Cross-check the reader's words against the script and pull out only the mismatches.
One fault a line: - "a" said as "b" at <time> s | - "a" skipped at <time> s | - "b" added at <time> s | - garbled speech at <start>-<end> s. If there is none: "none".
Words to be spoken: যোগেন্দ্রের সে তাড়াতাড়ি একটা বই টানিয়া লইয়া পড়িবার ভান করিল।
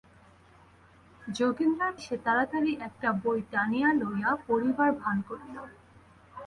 none